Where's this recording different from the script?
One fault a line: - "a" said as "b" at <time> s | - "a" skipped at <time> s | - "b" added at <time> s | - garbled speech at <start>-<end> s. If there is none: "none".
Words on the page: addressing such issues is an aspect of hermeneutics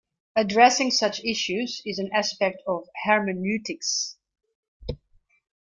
none